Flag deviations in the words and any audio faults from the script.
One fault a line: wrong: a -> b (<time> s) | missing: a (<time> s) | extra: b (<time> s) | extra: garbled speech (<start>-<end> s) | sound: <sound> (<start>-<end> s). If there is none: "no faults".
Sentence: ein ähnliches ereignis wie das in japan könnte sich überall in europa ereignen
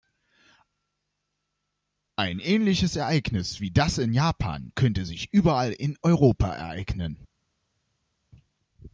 no faults